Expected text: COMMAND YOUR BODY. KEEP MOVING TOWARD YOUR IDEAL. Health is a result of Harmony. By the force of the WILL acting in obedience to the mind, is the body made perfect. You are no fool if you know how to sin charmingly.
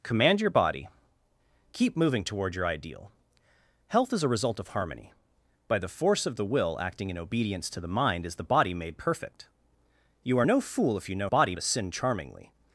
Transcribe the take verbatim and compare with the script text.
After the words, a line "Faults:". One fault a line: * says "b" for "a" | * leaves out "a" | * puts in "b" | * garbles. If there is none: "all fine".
COMMAND YOUR BODY. KEEP MOVING TOWARD YOUR IDEAL. Health is a result of Harmony. By the force of the WILL acting in obedience to the mind, is the body made perfect. You are no fool if you know body to sin charmingly.
Faults:
* says "body" for "how"